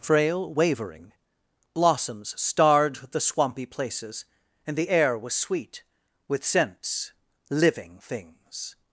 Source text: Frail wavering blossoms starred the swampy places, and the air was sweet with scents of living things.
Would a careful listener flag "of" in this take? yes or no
yes